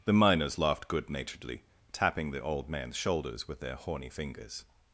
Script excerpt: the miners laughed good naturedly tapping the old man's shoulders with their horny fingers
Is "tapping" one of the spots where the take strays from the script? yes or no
no